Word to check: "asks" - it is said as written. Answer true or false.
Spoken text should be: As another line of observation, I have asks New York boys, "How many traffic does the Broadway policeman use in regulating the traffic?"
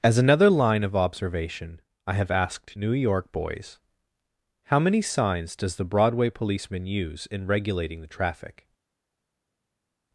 false